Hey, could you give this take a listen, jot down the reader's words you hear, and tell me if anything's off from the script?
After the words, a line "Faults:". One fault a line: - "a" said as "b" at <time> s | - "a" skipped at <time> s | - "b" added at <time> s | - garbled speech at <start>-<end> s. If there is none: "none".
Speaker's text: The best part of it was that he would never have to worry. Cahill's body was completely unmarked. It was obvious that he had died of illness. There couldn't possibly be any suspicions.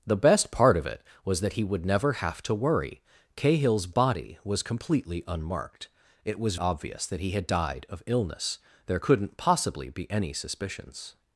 The best part of it was that he would never have to worry. Cahill's body was completely unmarked. It was obvious that he had died of illness. There couldn't possibly be any suspicions.
Faults:
none